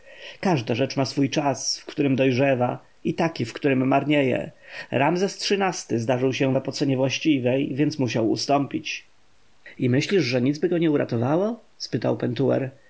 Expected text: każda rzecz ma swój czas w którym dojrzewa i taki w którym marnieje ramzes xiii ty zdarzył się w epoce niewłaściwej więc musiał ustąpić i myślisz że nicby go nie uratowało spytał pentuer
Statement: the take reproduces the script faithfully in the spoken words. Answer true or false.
true